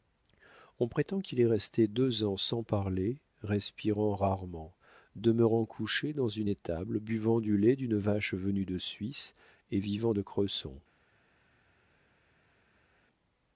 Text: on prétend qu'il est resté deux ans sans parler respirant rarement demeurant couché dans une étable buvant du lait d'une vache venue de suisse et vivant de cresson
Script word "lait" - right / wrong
right